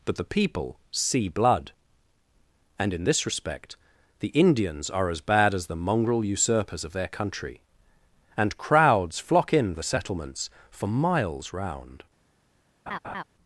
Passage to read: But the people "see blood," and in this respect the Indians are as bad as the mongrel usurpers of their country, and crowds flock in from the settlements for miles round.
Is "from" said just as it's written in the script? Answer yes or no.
no